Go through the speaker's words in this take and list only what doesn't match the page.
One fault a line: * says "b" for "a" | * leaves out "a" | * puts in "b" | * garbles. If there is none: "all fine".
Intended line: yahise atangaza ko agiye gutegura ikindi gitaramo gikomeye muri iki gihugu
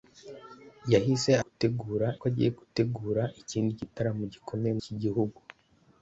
* says "gutegura" for "atangaza"
* leaves out "muri"